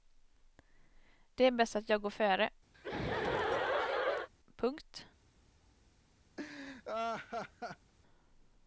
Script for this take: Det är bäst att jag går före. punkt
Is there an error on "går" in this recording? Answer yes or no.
no